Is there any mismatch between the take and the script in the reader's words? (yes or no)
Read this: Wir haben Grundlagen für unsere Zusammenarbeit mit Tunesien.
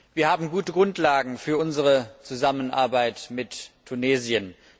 yes